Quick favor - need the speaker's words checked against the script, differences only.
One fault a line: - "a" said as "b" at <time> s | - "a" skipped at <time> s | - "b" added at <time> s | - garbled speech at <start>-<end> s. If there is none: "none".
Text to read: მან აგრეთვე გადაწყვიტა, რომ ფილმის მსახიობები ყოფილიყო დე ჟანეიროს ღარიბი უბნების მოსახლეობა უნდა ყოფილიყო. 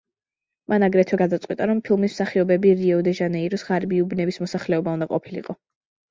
- "ყოფილიყო" said as "რიო" at 2.8 s